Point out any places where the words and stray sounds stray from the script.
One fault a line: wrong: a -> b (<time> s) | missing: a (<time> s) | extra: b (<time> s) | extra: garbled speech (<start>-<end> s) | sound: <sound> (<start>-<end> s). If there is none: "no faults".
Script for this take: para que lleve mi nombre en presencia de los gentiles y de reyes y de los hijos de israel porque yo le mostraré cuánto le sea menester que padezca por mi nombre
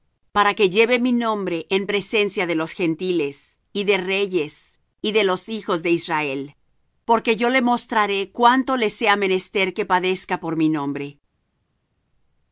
no faults